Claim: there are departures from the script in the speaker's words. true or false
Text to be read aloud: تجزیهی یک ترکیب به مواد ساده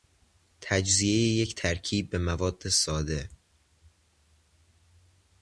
false